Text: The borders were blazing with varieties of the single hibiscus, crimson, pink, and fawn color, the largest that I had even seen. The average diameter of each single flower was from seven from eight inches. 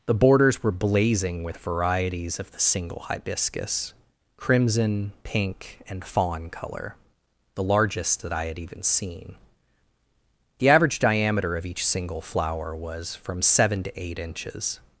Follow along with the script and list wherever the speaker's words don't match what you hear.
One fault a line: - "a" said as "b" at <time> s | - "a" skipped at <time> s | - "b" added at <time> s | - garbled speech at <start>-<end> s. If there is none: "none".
- "from" said as "to" at 13.8 s